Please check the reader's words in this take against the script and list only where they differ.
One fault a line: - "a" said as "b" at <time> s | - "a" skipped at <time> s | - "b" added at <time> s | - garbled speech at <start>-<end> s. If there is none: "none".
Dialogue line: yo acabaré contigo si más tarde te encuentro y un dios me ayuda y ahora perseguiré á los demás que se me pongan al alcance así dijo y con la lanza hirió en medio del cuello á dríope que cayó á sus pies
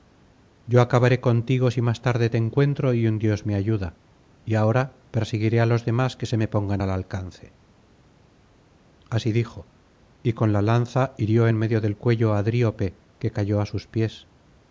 none